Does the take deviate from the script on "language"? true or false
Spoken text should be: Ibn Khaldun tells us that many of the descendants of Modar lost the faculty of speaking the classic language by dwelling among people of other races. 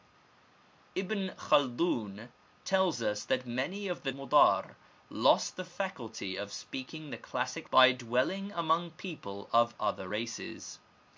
true